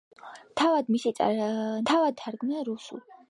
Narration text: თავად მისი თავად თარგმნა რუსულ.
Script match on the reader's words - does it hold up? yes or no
yes